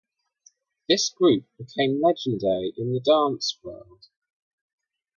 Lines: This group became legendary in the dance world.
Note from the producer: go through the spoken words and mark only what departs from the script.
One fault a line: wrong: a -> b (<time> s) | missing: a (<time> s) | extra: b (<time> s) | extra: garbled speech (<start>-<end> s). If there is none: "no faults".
no faults